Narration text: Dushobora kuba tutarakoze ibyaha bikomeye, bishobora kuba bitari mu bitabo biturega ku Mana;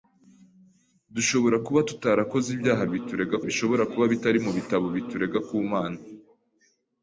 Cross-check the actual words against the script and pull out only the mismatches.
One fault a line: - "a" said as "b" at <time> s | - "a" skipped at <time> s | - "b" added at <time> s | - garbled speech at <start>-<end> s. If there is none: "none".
- "bikomeye" said as "biturega" at 2.9 s